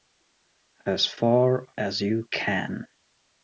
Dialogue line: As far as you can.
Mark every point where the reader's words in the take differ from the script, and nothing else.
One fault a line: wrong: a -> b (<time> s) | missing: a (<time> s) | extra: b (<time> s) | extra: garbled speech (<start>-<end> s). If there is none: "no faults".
no faults